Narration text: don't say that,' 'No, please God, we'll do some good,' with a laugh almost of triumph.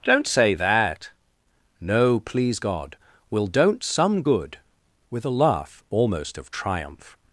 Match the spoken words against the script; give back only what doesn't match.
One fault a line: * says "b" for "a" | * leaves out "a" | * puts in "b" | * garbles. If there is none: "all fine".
* says "don't" for "do"